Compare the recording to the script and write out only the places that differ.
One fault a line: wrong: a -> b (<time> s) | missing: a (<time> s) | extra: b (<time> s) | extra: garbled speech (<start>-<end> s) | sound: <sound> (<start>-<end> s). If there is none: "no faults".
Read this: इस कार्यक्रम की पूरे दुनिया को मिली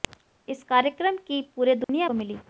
sound: dropout (1.8-1.9 s)